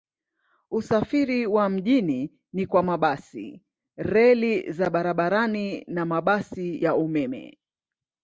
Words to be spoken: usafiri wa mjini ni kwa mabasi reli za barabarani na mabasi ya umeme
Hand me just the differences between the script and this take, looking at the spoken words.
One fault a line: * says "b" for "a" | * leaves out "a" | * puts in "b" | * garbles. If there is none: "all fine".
all fine